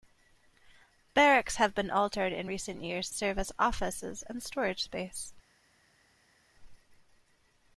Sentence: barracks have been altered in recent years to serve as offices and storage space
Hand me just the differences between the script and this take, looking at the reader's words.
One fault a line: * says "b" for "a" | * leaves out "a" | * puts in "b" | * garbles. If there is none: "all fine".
* leaves out "to"